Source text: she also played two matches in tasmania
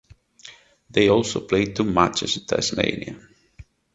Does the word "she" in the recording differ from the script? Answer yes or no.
yes